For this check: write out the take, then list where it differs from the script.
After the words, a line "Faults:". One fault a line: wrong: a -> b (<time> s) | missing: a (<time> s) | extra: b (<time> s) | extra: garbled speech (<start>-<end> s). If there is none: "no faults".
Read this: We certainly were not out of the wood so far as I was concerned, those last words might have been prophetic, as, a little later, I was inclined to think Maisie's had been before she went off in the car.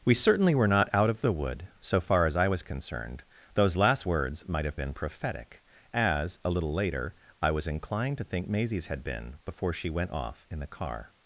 We certainly were not out of the wood so far as I was concerned, those last words might have been prophetic, as, a little later, I was inclined to think Maisie's had been before she went off in the car.
Faults:
no faults